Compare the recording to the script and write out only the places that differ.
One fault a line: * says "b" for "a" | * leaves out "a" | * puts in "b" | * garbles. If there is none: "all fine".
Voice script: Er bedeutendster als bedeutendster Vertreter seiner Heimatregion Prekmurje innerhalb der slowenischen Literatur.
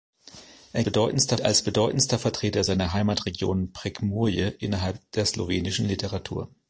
all fine